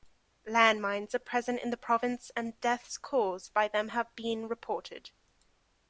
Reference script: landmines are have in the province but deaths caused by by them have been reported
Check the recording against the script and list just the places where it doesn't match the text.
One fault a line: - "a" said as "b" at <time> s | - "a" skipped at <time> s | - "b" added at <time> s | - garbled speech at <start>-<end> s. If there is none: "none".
- "have" said as "present" at 1.2 s
- "but" said as "and" at 2.4 s
- "by" skipped at 3.7 s